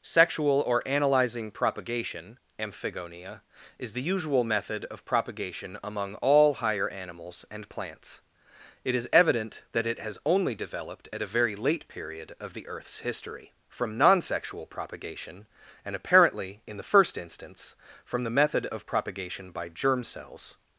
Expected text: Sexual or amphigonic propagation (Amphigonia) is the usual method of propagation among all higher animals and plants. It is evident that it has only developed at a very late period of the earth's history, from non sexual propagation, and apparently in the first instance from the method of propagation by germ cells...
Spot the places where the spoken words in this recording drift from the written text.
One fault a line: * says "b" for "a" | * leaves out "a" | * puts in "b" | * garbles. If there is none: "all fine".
* says "analyzing" for "amphigonic"